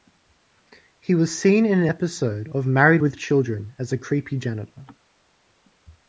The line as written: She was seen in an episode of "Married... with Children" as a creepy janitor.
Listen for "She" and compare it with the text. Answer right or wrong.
wrong